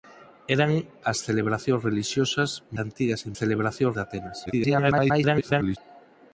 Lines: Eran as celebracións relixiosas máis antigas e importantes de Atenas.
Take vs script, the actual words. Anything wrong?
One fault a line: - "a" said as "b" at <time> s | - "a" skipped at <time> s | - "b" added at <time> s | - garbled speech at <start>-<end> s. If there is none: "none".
- "máis" skipped at 2.5 s
- "importantes" said as "celebracións" at 3.4 s
- garbled speech at 4.5-5.8 s